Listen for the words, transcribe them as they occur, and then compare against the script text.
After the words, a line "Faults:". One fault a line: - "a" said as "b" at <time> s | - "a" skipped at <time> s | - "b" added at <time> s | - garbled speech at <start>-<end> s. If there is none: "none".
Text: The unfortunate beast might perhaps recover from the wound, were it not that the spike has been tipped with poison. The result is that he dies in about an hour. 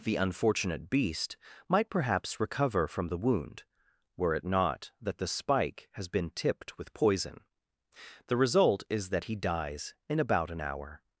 The unfortunate beast might perhaps recover from the wound, were it not that the spike has been tipped with poison. The result is that he dies in about an hour.
Faults:
none